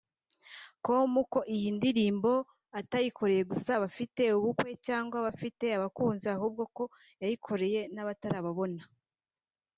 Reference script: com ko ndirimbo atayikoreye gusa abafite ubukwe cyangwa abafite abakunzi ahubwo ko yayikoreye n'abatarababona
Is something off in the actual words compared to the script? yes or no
yes